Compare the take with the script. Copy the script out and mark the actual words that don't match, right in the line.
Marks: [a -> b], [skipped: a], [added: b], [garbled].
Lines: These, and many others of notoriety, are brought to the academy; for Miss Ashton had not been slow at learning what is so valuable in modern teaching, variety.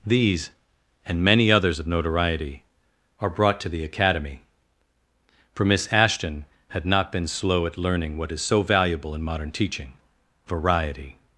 These, and many others of notoriety, are brought to the academy; for Miss Ashton had not been slow at learning what is so valuable in modern teaching, variety.